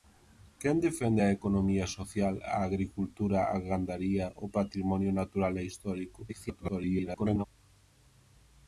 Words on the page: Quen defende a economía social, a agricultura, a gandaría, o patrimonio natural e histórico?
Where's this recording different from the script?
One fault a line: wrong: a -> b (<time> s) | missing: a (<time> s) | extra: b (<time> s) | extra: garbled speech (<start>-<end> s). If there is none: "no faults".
extra: garbled speech (6.3-7.5 s)